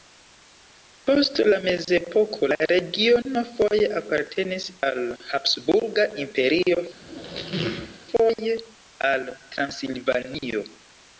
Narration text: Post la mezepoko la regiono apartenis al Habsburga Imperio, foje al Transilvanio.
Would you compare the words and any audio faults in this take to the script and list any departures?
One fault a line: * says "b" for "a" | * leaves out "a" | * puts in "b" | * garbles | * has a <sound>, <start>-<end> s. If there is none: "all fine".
* puts in "foje"
* has a squeak, 7.0-8.0 s